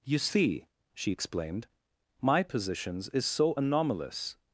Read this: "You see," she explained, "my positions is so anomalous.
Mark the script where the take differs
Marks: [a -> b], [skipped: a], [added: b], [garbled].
"You see," she explained, "my positions is so anomalous.